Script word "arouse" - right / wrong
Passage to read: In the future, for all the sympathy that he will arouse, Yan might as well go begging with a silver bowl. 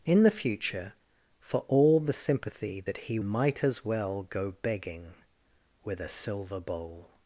wrong